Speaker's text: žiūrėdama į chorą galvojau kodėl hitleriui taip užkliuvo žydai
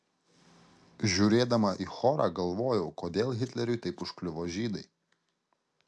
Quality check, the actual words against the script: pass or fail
pass